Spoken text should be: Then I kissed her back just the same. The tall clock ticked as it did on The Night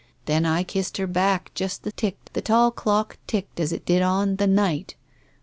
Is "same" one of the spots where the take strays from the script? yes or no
yes